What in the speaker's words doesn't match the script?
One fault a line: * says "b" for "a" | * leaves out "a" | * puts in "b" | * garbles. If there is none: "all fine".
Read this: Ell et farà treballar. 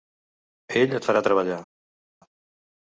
all fine